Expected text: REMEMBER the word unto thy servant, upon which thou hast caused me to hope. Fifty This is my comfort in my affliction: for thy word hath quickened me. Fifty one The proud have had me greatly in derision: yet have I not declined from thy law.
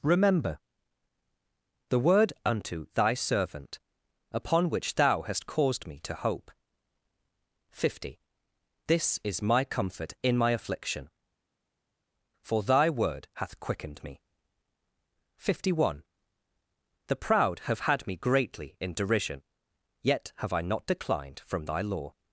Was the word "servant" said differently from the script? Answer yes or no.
no